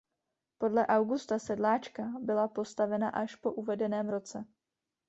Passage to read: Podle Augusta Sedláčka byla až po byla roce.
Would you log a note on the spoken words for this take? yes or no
yes